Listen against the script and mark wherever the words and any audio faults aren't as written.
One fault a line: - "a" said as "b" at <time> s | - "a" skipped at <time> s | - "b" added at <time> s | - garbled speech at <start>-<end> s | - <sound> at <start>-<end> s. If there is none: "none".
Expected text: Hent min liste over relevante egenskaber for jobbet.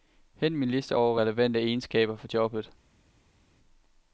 none